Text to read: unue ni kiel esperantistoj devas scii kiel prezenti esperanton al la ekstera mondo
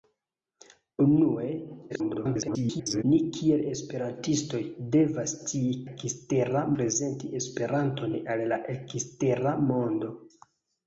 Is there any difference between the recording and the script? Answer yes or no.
yes